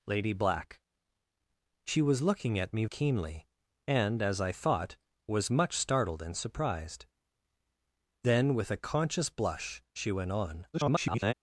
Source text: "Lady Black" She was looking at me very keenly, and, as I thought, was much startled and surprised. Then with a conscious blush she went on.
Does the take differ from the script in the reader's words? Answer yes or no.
yes